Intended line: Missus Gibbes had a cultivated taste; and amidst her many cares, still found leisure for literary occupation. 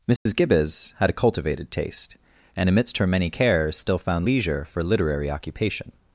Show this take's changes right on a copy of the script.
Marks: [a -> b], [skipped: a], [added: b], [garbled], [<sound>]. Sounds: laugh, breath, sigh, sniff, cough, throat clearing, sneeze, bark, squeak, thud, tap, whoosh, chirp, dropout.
Missus [dropout] Gibbes had a cultivated taste; and amidst her many cares, still found leisure for literary occupation.